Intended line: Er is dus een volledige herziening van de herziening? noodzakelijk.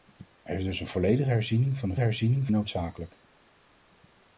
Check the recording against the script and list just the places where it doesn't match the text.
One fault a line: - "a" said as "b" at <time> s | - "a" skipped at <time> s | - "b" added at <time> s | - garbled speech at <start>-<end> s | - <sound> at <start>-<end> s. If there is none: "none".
none